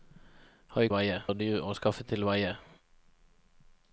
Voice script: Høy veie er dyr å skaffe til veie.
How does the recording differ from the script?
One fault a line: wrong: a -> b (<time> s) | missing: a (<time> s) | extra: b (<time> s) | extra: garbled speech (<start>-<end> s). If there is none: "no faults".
no faults